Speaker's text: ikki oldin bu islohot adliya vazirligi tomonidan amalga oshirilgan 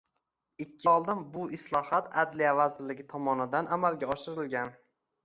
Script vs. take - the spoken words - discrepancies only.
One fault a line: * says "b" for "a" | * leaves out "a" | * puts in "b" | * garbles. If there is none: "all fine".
all fine